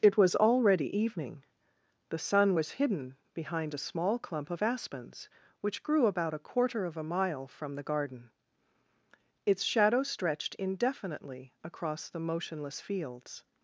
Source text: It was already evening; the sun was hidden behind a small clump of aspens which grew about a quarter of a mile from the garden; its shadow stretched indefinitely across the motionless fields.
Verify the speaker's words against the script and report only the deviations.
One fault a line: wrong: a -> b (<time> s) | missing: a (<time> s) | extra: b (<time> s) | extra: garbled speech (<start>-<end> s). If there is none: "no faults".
no faults